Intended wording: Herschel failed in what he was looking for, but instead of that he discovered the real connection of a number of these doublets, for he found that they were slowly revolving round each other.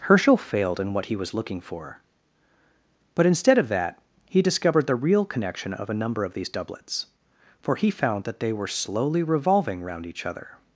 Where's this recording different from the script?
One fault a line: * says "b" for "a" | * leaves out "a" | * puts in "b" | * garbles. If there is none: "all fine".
all fine